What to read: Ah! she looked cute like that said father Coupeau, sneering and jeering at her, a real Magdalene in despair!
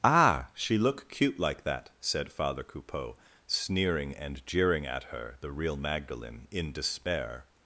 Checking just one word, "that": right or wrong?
right